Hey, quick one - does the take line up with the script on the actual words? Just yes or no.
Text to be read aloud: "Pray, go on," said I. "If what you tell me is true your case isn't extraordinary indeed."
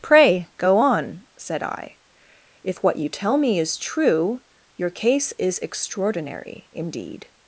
no